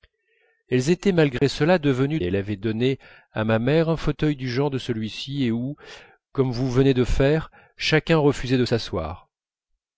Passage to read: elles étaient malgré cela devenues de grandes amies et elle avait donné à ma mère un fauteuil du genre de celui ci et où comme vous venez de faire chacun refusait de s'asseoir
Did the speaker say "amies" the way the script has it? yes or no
no